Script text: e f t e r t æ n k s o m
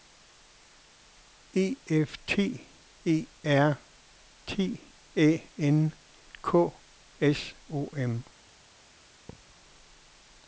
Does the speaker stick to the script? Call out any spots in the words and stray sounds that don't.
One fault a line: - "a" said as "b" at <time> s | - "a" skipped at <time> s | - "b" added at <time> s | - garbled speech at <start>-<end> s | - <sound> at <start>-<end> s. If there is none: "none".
- thud at 9.3-9.6 s